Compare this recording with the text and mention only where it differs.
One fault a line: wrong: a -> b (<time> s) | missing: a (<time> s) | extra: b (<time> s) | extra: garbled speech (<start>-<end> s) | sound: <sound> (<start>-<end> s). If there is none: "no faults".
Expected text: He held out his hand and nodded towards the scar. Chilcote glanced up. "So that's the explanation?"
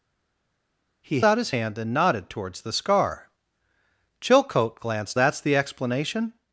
missing: held (1.2 s)
missing: up So (5.2 s)